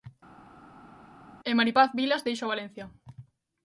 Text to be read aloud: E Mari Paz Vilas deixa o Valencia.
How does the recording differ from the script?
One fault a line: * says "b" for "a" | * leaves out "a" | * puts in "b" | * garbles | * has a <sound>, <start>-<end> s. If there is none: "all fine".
all fine